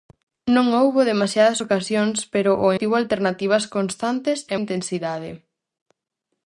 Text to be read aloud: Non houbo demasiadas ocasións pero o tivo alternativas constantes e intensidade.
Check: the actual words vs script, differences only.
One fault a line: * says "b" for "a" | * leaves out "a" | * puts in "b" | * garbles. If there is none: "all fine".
all fine